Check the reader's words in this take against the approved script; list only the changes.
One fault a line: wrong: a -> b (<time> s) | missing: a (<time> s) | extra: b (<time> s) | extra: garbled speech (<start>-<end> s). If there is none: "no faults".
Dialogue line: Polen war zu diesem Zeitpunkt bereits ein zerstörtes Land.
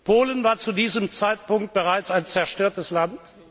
no faults